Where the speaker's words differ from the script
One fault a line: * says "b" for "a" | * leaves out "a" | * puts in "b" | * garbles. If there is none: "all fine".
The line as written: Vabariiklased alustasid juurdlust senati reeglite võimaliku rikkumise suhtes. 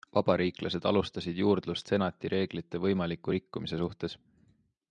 all fine